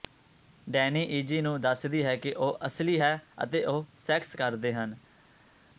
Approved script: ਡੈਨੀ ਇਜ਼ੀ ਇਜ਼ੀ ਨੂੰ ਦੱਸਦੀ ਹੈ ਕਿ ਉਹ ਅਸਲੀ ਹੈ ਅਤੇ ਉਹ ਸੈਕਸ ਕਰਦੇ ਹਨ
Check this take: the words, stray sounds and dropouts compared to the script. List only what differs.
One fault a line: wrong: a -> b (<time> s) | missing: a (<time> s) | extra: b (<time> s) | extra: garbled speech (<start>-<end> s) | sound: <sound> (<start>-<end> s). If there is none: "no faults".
missing: ਇਜ਼ੀ (1.4 s)